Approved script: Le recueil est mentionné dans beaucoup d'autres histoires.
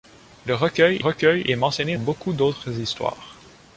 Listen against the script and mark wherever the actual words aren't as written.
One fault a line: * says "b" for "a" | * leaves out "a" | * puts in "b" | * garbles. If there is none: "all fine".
* puts in "recueil"
* leaves out "dans"